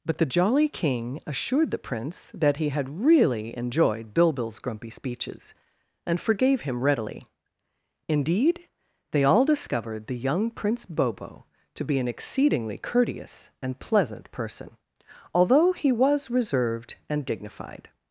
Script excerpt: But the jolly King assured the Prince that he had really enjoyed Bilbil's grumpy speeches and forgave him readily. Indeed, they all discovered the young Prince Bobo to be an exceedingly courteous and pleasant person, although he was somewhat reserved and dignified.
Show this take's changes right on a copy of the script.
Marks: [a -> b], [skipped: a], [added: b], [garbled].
But the jolly King assured the Prince that he had really enjoyed Bilbil's grumpy speeches and forgave him readily. Indeed, they all discovered the young Prince Bobo to be an exceedingly courteous and pleasant person, although he was [skipped: somewhat] reserved and dignified.